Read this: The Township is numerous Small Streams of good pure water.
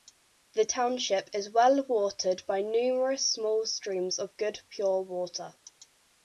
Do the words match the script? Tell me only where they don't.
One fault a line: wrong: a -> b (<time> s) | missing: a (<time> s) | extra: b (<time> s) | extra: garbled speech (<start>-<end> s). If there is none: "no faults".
extra: well watered by (1.5 s)